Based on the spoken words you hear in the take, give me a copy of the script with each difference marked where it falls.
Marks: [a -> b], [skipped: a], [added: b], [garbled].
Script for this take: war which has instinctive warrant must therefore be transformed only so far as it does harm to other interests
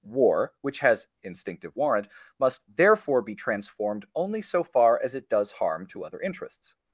war which has instinctive warrant must therefore be transformed only so far as it does harm to other interests